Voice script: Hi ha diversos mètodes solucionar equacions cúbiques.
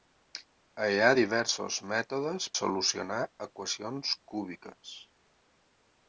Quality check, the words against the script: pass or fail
pass